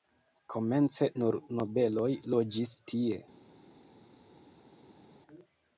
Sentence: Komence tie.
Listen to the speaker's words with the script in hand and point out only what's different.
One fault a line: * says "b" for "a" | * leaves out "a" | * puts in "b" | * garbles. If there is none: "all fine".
* puts in "nur nobeloj loĝis"